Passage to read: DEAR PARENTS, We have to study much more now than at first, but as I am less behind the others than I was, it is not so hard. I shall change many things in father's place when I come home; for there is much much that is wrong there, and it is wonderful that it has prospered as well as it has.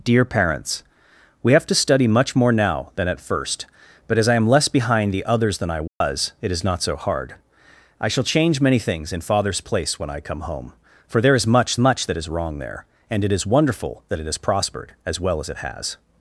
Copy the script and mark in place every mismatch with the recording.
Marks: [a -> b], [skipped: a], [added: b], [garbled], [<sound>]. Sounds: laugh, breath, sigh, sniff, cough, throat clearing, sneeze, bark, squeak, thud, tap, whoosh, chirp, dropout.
DEAR PARENTS, We have to study much more now than at first, but as I am less behind the others than I was, [dropout] it is not so hard. I shall change many things in father's place when I come home; for there is much much that is wrong there, and it is wonderful that it has prospered as well as it has.